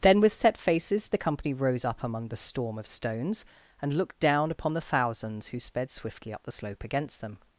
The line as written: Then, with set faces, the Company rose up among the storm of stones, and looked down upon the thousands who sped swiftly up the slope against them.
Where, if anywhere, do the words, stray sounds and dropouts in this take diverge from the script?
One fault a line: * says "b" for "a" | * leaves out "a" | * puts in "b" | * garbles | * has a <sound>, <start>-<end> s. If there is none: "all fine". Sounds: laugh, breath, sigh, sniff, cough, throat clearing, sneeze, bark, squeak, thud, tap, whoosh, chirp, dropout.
all fine